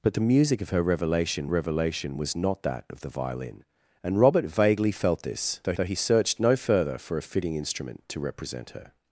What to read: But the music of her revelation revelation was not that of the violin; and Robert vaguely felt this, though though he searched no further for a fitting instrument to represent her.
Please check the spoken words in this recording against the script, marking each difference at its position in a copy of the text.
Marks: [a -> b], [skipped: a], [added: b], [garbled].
But the music of her revelation revelation was not that of the violin; and Robert vaguely felt this, though though he searched no further for a fitting instrument to represent her.